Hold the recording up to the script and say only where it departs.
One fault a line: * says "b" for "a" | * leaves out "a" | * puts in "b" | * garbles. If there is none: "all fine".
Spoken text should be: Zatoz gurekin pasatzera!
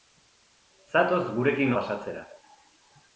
all fine